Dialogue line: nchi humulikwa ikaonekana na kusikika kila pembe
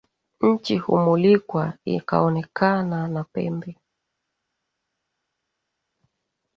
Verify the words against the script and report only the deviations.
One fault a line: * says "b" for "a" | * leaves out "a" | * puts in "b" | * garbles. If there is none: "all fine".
* leaves out "kusikika kila"